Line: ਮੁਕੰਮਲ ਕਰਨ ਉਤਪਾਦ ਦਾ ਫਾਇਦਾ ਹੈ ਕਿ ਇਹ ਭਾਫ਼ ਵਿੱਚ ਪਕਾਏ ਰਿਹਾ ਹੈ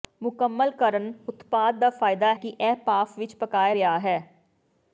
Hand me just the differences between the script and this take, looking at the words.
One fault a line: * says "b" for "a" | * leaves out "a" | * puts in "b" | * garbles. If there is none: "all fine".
* leaves out "ਹੈ"